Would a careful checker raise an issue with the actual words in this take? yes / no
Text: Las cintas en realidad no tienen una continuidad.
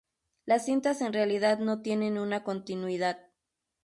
no